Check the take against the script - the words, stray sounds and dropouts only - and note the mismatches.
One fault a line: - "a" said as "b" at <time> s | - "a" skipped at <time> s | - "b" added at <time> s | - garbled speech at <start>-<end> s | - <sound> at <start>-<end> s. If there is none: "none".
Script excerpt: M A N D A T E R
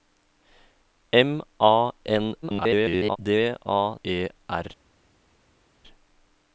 - garbled speech at 2.4-3.2 s
- "T" skipped at 4.0 s